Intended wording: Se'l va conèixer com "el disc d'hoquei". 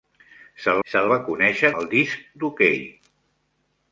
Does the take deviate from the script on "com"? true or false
true